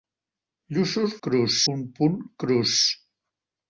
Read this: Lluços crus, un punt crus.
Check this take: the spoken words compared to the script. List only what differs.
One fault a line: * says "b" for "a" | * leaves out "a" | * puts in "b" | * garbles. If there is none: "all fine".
all fine